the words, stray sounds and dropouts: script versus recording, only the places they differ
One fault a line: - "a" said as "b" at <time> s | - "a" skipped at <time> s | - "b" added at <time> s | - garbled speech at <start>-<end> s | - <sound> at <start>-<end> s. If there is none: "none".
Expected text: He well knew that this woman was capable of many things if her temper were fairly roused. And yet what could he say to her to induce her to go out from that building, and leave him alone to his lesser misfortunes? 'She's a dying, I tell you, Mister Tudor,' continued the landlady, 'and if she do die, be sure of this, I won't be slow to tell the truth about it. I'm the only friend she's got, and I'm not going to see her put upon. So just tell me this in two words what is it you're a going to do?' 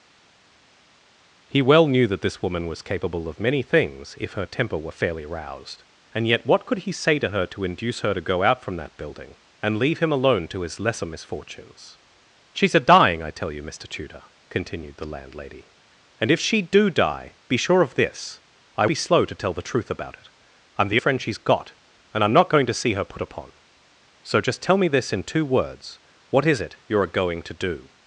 - "won't" skipped at 18.9 s
- "only" skipped at 21.0 s